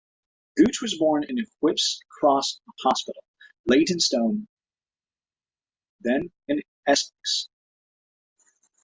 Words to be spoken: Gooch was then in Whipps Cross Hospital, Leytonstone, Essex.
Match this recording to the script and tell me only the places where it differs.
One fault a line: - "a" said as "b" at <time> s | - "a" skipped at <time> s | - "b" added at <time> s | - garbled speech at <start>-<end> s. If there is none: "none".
- "then" said as "born" at 1.0 s
- "then in" added at 6.0 s